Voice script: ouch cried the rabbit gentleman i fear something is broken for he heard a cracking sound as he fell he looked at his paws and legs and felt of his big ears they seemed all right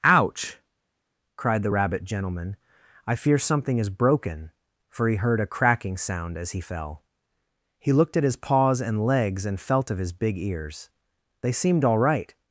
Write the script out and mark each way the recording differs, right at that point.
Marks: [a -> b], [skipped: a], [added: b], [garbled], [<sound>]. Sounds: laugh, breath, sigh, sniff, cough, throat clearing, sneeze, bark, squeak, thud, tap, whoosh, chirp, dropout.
ouch cried the rabbit gentleman i fear something is broken for he heard a cracking sound as he fell he looked at his paws and legs and felt of his big ears they seemed all right